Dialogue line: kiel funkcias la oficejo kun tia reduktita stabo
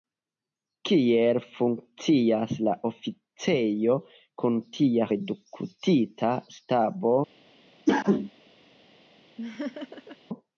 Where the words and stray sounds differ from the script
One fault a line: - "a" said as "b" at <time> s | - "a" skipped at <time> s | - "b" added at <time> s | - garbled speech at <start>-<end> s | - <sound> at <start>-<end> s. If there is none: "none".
- cough at 7.9-8.3 s
- laugh at 9.4-10.2 s